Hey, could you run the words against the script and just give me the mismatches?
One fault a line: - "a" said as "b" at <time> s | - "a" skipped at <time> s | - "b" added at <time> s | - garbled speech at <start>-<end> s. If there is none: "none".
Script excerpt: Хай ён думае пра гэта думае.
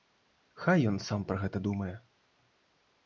- "думае" said as "сам" at 1.1 s